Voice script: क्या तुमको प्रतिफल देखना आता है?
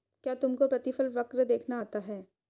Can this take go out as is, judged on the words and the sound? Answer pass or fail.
fail